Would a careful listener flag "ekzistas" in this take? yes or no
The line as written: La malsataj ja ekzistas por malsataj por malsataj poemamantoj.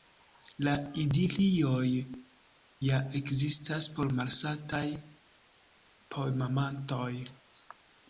no